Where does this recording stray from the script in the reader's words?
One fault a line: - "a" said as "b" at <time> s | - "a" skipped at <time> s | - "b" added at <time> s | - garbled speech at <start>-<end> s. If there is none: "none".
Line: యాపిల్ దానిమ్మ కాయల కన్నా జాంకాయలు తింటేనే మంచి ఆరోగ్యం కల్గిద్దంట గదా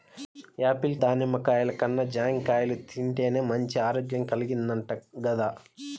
none